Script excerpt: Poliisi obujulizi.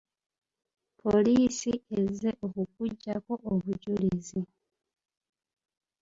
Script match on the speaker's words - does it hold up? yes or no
no